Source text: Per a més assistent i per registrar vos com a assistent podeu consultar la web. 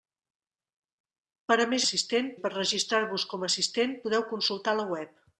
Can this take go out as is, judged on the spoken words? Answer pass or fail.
pass